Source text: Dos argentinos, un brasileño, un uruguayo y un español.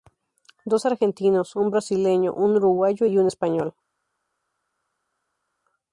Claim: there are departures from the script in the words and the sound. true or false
false